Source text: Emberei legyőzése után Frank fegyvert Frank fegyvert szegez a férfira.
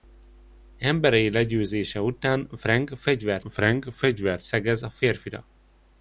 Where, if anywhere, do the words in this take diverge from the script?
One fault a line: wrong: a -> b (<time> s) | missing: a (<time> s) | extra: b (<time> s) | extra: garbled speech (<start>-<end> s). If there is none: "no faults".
no faults